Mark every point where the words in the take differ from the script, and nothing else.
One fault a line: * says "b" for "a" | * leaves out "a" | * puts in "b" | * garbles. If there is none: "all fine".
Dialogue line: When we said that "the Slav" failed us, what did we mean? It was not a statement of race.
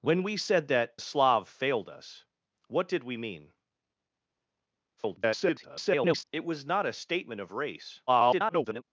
* leaves out "the"
* garbles
* garbles